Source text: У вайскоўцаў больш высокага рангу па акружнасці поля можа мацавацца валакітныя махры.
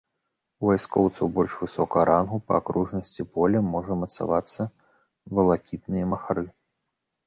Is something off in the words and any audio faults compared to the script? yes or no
no